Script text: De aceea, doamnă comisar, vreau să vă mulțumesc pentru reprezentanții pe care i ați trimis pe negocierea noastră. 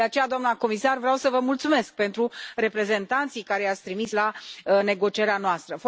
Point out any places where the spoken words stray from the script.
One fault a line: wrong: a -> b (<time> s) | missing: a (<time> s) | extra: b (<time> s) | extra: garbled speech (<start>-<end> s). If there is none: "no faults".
wrong: pe -> la (4.1 s)